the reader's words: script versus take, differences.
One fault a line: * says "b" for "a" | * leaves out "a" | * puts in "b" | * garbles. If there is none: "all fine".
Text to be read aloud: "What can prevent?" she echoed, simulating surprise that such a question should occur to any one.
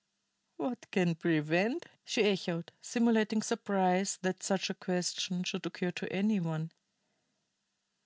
all fine